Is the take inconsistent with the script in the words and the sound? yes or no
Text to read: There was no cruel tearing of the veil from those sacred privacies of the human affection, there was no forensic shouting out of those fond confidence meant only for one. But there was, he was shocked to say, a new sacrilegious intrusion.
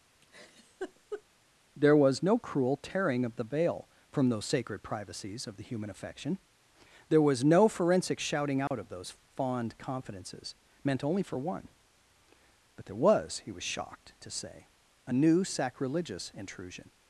yes